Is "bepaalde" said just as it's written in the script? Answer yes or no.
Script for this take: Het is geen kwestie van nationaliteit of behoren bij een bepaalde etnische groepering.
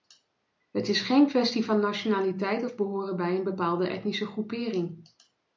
yes